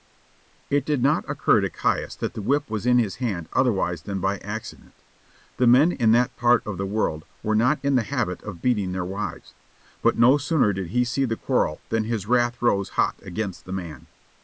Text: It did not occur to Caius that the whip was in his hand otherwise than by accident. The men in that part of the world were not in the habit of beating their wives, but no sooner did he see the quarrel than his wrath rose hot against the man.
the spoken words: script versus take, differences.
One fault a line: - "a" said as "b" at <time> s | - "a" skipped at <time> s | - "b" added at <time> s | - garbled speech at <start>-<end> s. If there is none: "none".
none